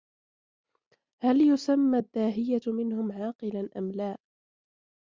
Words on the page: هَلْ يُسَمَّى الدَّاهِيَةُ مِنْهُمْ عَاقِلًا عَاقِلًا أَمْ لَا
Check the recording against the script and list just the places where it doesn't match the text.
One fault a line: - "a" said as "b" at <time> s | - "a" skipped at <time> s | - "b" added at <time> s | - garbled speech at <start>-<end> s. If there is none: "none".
- "عَاقِلًا" skipped at 3.7 s